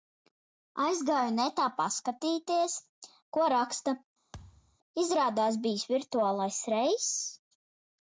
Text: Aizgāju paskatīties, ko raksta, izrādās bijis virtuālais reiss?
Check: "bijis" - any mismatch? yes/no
no